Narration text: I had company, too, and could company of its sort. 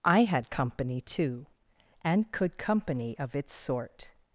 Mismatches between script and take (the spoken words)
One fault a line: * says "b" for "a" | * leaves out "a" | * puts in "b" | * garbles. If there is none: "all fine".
all fine